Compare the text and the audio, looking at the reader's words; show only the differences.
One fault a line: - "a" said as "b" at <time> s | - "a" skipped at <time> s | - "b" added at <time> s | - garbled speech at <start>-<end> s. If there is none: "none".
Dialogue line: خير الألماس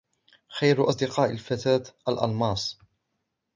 - "أصدقاء الفتاة" added at 0.9 s